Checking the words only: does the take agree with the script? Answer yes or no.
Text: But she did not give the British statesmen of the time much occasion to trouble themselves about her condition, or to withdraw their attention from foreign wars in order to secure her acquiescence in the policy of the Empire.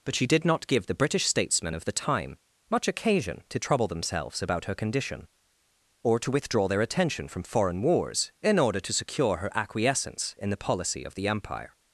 yes